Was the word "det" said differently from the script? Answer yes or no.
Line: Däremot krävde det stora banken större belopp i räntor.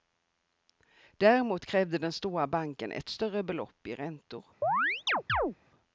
yes